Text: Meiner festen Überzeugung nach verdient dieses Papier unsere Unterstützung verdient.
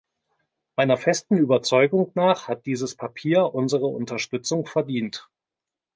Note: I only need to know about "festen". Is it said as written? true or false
true